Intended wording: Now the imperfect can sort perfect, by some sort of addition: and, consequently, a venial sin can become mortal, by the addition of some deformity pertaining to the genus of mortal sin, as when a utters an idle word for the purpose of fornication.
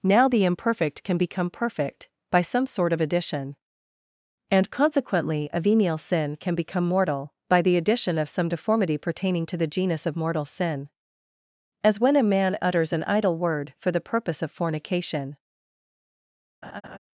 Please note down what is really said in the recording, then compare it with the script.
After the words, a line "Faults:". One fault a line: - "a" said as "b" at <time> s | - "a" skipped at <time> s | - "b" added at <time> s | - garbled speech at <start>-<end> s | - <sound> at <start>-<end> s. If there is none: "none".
Now the imperfect can become perfect, by some sort of addition: and, consequently, a venial sin can become mortal, by the addition of some deformity pertaining to the genus of mortal sin, as when a man utters an idle word for the purpose of fornication.
Faults:
- "sort" said as "become" at 1.2 s
- "man" added at 12.2 s
- laugh at 16.6-17.0 s